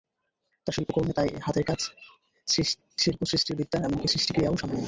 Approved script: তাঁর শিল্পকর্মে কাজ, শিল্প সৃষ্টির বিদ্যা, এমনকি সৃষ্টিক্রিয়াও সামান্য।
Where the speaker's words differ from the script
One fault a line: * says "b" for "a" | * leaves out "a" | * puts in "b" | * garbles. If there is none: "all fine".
* puts in "তাই হাতের"